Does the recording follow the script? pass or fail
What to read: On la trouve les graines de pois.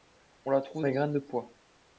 pass